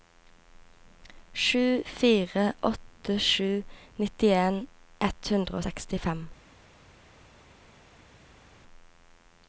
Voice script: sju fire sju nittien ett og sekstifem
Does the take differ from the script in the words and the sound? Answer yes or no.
yes